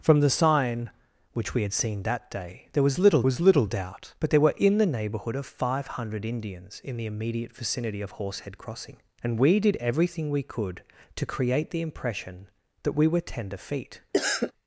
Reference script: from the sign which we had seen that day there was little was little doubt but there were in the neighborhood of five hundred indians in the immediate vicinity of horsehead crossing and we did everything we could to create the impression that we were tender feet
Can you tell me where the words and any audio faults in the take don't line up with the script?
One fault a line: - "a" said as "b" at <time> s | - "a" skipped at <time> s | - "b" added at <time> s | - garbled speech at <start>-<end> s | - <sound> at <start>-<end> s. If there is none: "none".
- cough at 14.1-14.5 s